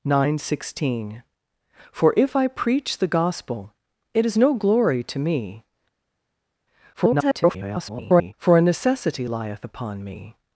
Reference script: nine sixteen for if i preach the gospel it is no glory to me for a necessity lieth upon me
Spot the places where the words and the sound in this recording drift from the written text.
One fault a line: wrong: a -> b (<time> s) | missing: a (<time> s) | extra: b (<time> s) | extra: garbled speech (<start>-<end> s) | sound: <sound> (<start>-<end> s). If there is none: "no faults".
extra: garbled speech (6.9-8.3 s)